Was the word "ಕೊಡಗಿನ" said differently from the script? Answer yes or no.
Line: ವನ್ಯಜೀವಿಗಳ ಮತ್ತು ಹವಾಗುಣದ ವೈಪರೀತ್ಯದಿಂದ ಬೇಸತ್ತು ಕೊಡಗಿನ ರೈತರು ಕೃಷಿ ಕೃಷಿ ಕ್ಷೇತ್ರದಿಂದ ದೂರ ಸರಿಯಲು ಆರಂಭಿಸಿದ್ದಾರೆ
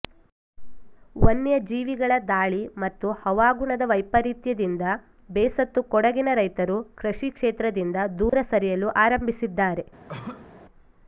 no